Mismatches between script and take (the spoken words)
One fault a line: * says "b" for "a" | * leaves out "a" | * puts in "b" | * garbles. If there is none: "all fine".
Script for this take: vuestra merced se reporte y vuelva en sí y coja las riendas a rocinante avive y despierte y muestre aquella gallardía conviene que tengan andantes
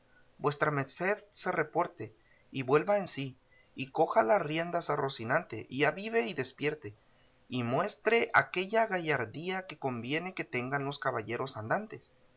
* puts in "y"
* puts in "que"
* puts in "los caballeros"